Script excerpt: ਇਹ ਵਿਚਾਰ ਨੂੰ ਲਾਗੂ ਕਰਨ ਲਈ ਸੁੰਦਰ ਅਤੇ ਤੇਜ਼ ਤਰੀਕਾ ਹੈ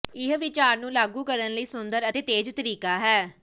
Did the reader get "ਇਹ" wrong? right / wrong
right